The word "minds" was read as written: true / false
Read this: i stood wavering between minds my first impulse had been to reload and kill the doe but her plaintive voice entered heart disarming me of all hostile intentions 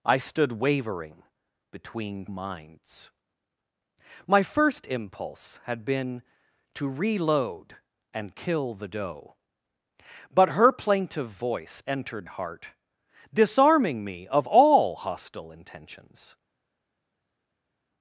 true